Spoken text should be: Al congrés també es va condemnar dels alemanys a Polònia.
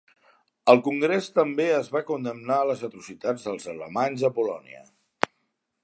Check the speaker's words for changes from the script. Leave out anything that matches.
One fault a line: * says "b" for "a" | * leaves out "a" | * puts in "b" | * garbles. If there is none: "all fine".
* puts in "les atrocitats"